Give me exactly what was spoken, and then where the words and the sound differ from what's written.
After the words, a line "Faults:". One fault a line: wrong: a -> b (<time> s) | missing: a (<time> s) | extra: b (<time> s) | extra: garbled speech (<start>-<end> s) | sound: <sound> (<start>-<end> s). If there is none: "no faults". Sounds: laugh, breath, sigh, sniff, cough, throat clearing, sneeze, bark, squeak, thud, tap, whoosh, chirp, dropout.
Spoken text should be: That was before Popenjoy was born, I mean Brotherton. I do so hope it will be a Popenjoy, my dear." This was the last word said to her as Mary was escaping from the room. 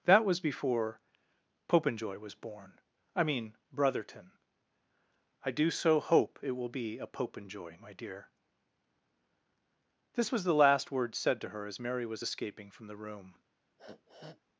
That was before Popenjoy was born, I mean Brotherton. I do so hope it will be a Popenjoy, my dear." This was the last word said to her as Mary was escaping from the room.
Faults:
sound: sniff (13.8-14.4 s)